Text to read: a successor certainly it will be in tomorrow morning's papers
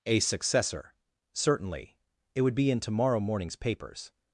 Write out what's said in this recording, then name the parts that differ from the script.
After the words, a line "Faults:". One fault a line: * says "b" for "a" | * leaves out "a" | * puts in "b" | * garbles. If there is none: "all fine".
a successor certainly it would be in tomorrow morning's papers
Faults:
* says "would" for "will"